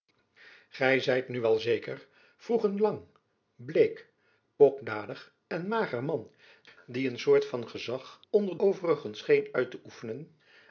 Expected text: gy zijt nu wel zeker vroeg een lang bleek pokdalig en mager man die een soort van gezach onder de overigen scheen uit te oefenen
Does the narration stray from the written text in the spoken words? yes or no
yes